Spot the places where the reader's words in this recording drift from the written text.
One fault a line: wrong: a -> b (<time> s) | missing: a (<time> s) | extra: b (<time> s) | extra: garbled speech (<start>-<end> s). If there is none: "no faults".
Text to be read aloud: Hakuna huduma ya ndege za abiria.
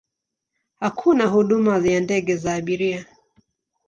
no faults